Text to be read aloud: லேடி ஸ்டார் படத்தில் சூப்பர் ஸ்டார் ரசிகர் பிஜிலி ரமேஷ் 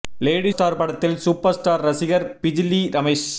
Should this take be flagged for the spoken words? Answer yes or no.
no